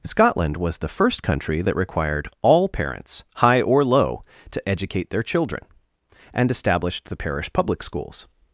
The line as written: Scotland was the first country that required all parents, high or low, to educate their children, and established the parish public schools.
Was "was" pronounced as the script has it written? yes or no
yes